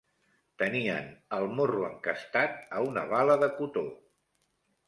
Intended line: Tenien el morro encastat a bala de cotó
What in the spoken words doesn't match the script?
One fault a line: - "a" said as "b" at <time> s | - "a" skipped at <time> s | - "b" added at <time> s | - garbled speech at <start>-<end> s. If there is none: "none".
- "una" added at 2.9 s